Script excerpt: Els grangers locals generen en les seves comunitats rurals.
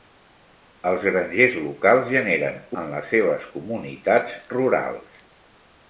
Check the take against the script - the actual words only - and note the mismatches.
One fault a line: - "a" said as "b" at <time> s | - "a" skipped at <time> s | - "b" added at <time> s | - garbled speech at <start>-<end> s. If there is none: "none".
none